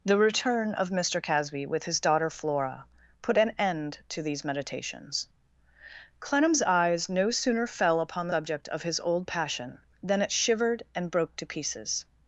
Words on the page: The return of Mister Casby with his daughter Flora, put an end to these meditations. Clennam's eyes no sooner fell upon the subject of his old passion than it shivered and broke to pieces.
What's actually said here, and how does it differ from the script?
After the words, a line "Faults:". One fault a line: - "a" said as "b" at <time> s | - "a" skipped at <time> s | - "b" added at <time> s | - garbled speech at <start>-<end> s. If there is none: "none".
The return of Mister Casby with his daughter Flora, put an end to these meditations. Clennam's eyes no sooner fell upon subject of his old passion than it shivered and broke to pieces.
Faults:
- "the" skipped at 8.3 s